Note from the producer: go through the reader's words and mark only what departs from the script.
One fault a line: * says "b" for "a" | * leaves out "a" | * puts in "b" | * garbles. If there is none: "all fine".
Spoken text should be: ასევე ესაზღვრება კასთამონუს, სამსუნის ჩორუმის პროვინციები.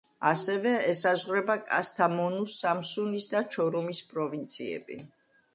* puts in "და"